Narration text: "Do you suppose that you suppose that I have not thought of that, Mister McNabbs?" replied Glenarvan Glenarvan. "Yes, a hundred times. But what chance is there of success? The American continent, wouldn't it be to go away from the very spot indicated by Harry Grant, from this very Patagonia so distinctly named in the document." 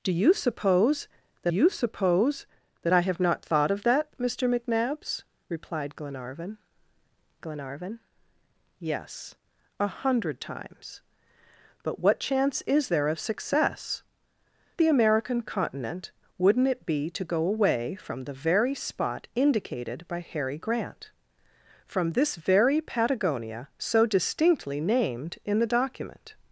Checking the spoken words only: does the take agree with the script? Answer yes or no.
yes